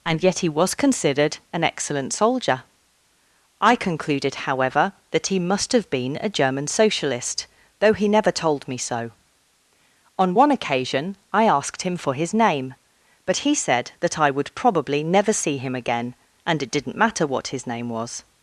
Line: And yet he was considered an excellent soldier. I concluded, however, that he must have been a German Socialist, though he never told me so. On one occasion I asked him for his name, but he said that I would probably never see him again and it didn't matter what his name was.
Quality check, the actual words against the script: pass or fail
pass